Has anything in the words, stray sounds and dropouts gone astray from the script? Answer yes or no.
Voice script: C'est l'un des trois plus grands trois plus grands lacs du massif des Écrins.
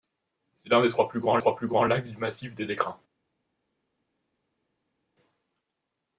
no